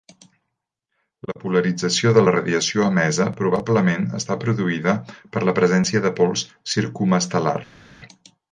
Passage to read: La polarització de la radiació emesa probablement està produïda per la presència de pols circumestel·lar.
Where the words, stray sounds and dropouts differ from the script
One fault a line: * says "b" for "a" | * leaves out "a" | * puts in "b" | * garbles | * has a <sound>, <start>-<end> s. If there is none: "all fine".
all fine